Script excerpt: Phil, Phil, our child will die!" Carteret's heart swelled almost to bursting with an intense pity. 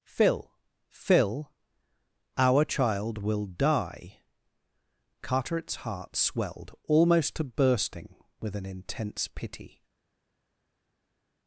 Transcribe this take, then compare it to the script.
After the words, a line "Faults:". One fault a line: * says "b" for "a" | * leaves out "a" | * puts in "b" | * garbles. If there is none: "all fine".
Phil, Phil, our child will die!" Carteret's heart swelled almost to bursting with an intense pity.
Faults:
all fine